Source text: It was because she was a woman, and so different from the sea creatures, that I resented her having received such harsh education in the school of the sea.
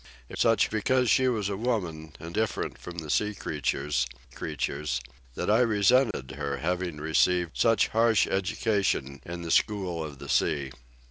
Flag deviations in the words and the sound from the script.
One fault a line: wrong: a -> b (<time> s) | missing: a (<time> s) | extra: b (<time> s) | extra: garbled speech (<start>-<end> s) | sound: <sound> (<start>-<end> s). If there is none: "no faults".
wrong: was -> such (0.4 s)
missing: so (2.4 s)
extra: creatures (4.3 s)
sound: dropout (6.1-6.1 s)